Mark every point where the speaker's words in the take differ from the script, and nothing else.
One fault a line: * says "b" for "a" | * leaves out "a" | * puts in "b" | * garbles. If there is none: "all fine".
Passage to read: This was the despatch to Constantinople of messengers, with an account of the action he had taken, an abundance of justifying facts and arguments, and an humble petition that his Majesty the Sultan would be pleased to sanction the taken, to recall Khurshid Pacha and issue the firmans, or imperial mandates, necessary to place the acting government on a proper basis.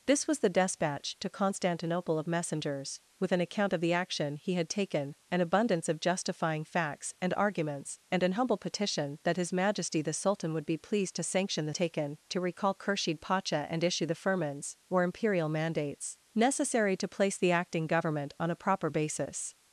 all fine